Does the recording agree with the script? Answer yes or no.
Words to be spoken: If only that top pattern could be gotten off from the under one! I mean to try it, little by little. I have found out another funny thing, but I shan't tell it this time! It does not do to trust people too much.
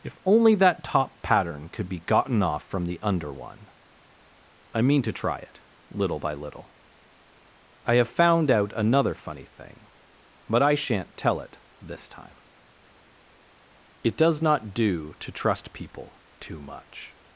yes